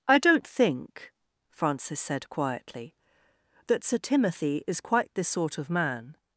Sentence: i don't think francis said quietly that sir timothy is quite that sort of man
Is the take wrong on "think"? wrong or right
right